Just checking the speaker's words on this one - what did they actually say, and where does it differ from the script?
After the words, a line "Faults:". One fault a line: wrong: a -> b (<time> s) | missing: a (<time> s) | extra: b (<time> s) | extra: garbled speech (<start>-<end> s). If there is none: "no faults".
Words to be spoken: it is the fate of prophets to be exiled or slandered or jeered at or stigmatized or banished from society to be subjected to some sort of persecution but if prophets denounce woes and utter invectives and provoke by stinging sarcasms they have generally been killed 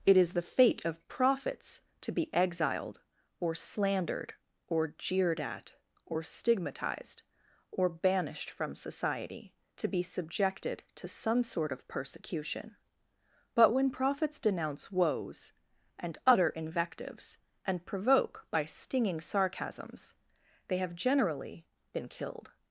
it is the fate of prophets to be exiled or slandered or jeered at or stigmatized or banished from society to be subjected to some sort of persecution but when prophets denounce woes and utter invectives and provoke by stinging sarcasms they have generally been killed
Faults:
wrong: if -> when (13.7 s)